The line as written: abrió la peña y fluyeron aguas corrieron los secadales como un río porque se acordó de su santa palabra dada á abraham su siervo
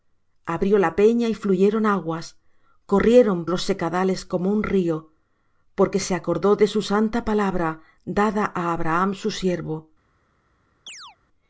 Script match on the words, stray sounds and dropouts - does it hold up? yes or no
no